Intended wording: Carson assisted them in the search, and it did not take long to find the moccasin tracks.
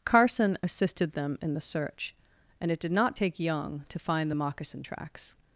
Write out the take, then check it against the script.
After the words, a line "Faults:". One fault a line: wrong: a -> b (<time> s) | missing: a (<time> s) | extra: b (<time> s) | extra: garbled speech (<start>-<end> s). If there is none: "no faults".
Carson assisted them in the search, and it did not take young to find the moccasin tracks.
Faults:
wrong: long -> young (3.4 s)